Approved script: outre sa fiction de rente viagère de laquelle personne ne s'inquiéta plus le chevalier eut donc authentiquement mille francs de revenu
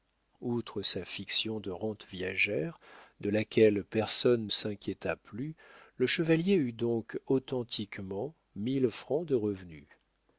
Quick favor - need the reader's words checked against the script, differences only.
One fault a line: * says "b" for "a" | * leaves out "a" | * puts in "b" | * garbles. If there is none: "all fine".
* leaves out "ne"